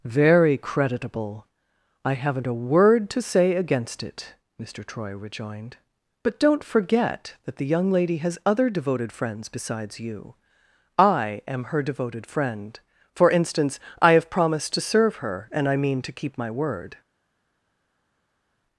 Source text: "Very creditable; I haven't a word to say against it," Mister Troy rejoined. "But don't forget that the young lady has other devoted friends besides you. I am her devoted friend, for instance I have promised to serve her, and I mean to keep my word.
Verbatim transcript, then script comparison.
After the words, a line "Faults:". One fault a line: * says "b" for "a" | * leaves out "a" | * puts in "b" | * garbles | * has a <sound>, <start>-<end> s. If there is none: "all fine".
"Very creditable; I haven't a word to say against it," Mister Troy rejoined. "But don't forget that the young lady has other devoted friends besides you. I am her devoted friend, for instance I have promised to serve her, and I mean to keep my word.
Faults:
all fine